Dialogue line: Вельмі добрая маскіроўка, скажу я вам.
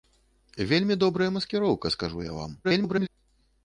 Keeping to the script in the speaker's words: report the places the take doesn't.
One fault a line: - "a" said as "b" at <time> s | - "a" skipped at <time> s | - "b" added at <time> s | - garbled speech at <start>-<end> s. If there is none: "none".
- garbled speech at 2.6-3.1 s